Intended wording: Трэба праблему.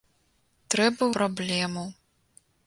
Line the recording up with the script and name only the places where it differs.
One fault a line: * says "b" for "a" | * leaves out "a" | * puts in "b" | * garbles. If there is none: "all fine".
all fine